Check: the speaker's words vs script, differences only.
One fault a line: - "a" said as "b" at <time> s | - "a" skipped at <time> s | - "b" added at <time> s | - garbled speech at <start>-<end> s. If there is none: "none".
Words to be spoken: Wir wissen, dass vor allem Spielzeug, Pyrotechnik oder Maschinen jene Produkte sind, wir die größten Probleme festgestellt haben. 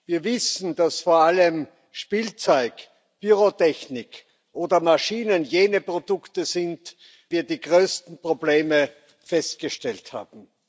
none